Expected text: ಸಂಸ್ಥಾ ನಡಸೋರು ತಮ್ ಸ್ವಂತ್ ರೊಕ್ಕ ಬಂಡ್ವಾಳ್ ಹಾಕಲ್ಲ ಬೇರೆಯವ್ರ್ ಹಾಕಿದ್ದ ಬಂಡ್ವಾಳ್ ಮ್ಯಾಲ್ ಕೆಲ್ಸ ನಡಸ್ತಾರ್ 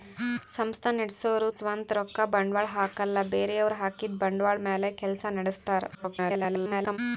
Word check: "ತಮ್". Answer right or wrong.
wrong